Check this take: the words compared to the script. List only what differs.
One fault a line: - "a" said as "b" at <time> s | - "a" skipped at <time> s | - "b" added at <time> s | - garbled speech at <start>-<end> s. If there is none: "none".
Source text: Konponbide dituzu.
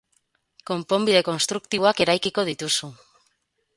- "konstruktiboak eraikiko" added at 1.3 s